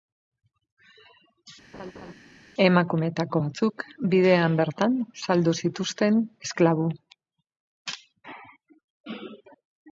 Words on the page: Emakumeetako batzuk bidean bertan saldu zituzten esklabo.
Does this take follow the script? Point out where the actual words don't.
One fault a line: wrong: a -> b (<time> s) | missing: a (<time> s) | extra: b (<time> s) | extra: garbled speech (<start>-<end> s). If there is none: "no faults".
no faults